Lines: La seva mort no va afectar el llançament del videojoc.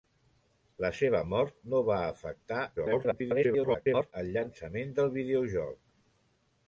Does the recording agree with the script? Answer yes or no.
no